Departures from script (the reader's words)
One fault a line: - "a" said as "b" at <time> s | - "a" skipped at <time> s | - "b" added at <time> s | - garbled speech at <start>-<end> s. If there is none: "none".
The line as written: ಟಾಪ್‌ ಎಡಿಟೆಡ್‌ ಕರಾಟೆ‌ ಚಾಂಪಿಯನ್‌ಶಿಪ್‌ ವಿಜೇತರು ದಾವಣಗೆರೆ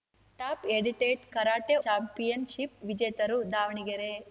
none